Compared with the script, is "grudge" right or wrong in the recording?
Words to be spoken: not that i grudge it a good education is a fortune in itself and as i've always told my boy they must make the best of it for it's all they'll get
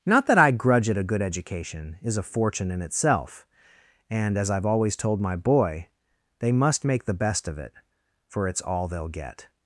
right